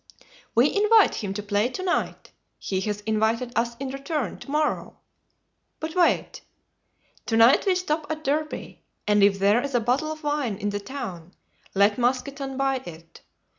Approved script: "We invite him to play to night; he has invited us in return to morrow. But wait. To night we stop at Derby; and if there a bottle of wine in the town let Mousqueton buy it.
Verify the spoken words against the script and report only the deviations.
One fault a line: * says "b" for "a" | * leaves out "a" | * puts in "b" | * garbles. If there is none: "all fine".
* puts in "is"